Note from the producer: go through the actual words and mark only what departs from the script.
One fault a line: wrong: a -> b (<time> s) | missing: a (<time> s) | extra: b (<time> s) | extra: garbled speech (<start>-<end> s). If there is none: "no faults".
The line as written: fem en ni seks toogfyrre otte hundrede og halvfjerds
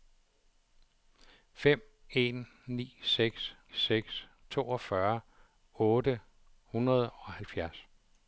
extra: seks (3.7 s)